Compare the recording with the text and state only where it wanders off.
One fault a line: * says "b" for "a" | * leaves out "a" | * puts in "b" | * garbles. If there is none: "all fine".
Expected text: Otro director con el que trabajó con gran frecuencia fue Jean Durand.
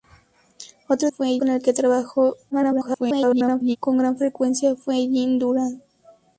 * says "fue" for "director"
* garbles